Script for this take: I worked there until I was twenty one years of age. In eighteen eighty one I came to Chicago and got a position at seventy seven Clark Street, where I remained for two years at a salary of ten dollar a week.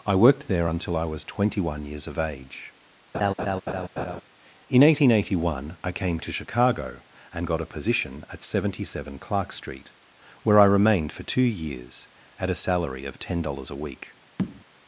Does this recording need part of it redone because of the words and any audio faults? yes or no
yes